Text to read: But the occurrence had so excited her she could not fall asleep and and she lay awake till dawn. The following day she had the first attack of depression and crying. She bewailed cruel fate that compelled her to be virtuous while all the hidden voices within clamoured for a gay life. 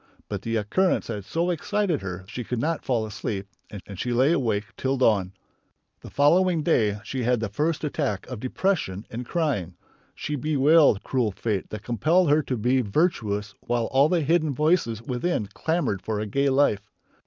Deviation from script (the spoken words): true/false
false